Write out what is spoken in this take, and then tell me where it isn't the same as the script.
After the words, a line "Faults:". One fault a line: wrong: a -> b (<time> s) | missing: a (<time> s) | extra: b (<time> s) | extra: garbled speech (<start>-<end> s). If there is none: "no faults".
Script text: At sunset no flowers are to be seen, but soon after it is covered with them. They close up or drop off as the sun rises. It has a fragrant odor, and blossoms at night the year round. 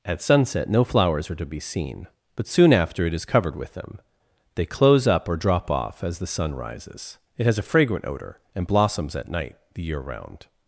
At sunset no flowers are to be seen, but soon after it is covered with them. They close up or drop off as the sun rises. It has a fragrant odor, and blossoms at night the year round.
Faults:
no faults